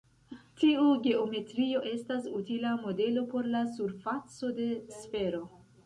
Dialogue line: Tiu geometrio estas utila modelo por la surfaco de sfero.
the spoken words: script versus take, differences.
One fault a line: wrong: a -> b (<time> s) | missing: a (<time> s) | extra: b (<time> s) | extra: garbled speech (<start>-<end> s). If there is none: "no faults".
no faults